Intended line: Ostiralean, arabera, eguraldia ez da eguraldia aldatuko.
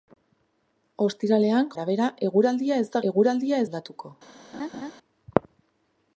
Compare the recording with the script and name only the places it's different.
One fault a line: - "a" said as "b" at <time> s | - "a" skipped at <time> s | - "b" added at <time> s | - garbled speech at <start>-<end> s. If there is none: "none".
none